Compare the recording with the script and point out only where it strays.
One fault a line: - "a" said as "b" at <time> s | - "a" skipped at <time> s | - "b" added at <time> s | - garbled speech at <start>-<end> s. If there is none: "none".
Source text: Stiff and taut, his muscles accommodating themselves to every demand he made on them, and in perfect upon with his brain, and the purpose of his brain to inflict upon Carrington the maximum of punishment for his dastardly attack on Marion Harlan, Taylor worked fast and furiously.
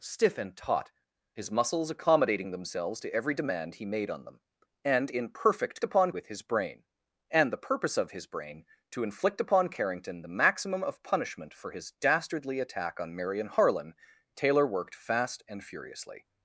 none